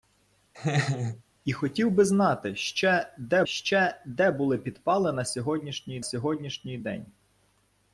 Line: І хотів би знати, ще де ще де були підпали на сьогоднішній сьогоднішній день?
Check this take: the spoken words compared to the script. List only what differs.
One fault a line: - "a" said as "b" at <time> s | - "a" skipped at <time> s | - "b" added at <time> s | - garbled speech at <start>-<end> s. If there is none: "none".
none